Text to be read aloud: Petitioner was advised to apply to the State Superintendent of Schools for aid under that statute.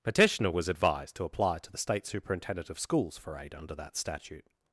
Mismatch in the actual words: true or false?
false